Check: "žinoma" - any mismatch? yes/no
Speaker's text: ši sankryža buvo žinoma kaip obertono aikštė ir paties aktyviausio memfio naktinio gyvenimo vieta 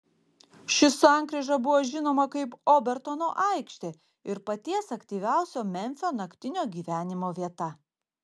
no